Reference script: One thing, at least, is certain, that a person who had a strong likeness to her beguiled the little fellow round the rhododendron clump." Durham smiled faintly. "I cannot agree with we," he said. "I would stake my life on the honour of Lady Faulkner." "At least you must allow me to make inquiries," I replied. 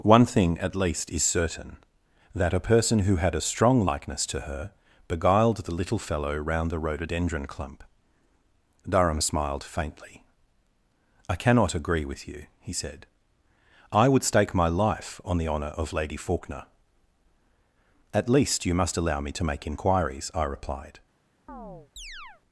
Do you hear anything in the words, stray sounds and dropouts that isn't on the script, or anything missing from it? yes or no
yes